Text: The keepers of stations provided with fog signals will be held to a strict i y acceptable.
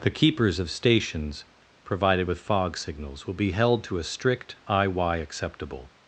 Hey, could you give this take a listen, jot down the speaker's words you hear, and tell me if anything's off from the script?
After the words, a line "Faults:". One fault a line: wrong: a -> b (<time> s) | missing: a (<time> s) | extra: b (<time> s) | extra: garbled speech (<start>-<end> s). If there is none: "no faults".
The keepers of stations provided with fog signals will be held to a strict i y acceptable.
Faults:
no faults